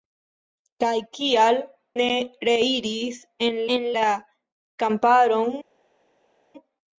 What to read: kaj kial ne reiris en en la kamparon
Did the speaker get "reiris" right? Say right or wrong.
right